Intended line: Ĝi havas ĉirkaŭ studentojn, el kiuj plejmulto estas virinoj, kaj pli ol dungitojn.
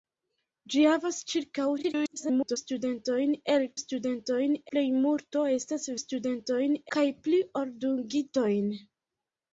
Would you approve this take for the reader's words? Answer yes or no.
no